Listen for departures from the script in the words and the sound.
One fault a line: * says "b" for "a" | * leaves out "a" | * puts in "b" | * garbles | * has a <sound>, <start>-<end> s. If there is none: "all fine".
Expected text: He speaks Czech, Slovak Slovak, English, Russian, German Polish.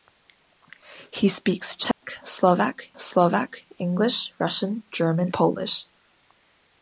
* has a dropout, 1.9-2.0 s